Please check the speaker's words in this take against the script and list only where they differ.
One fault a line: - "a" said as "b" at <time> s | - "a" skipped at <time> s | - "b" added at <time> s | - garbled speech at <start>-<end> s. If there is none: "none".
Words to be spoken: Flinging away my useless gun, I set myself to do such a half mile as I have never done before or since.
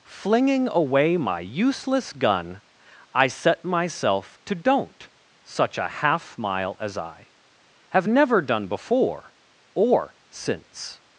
- "do" said as "don't" at 4.5 s